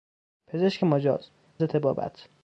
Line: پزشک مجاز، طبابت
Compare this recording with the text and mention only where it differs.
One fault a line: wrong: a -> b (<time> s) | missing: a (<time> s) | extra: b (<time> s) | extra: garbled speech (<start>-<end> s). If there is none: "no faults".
no faults